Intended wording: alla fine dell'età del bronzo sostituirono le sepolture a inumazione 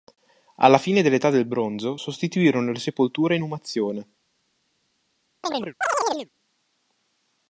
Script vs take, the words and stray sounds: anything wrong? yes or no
yes